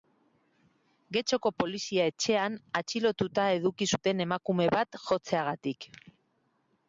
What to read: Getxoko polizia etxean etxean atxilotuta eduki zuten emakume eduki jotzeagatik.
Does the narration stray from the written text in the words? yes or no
yes